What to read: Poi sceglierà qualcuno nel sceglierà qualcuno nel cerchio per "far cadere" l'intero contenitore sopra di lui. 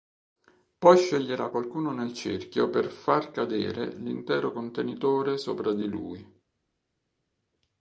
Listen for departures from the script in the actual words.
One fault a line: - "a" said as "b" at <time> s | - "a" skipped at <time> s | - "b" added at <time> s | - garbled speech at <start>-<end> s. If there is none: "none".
- "sceglierà qualcuno nel" skipped at 2.1 s